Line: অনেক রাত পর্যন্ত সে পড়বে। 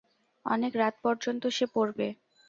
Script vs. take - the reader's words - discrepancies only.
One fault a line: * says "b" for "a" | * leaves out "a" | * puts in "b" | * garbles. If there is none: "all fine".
all fine